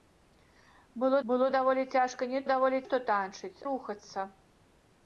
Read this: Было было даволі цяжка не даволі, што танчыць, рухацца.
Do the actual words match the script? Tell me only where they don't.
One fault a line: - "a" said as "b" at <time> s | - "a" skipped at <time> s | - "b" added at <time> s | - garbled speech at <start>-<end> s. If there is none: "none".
none